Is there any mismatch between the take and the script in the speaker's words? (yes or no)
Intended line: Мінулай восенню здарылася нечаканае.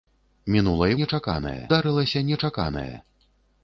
yes